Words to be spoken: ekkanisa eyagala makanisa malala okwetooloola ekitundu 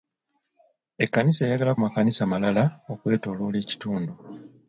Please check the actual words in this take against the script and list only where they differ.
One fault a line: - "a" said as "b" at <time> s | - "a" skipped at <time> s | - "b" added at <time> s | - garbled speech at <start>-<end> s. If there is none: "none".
none